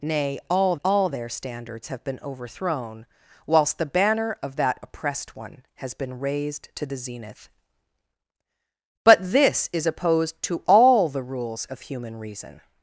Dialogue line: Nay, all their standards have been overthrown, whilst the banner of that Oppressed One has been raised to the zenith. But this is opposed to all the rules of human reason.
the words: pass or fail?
fail